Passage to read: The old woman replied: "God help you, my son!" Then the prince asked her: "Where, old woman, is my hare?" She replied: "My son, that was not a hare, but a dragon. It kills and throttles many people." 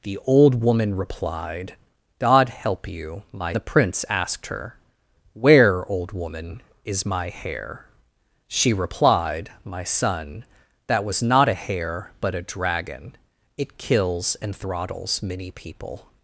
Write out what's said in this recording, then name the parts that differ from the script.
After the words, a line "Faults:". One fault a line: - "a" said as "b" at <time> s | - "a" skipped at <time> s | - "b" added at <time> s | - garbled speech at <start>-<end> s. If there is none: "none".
The old woman replied: "God help you, my the prince asked her: "Where, old woman, is my hare?" She replied: "My son, that was not a hare, but a dragon. It kills and throttles many people."
Faults:
- "son Then" skipped at 3.5 s